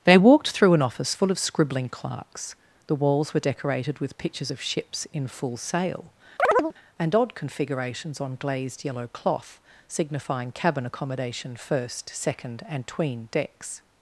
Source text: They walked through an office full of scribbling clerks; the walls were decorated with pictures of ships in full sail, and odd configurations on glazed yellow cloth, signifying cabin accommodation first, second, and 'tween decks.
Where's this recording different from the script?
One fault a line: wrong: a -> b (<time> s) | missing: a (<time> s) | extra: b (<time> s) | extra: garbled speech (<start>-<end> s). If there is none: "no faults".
no faults